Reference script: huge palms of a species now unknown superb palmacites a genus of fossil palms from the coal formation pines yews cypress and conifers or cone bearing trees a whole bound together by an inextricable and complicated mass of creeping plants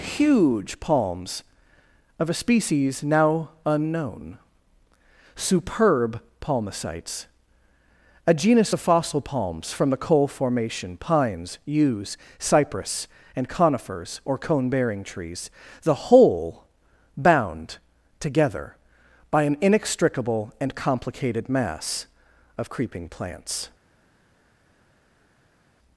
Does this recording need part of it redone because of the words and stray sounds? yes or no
yes